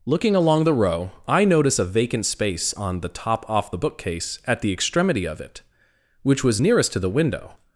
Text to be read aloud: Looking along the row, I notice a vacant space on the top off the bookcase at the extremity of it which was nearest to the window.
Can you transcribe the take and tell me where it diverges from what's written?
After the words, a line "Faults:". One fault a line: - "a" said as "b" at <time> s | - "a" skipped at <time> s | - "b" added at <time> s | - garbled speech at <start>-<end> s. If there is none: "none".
Looking along the row, I notice a vacant space on the top off the bookcase at the extremity of it which was nearest to the window.
Faults:
none